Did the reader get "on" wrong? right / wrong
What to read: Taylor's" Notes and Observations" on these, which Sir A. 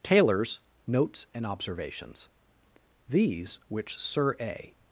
wrong